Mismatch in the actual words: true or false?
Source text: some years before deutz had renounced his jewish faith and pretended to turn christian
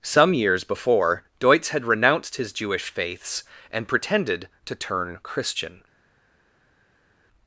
true